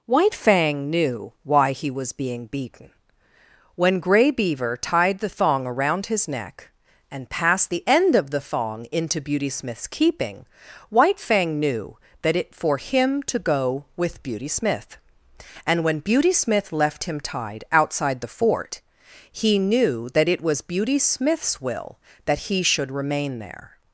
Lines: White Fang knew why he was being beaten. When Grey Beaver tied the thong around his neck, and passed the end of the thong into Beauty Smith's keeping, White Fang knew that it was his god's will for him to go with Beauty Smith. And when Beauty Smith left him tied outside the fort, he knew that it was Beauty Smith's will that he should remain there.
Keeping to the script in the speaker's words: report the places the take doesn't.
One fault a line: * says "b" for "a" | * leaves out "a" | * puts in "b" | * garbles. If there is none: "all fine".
* leaves out "was his god's will"